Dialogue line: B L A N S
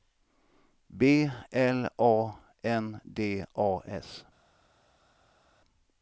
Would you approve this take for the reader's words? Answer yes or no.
no